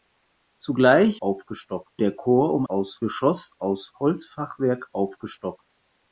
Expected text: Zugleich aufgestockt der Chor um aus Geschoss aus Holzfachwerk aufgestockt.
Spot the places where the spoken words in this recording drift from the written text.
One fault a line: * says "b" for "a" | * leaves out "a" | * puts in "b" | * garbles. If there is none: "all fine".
all fine